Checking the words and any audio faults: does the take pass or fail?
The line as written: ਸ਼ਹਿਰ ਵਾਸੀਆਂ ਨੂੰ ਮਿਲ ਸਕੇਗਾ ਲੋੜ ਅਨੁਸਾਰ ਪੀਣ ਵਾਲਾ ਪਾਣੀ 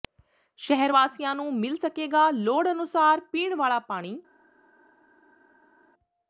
pass